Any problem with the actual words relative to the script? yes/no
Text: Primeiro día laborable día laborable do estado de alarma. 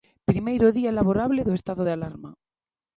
yes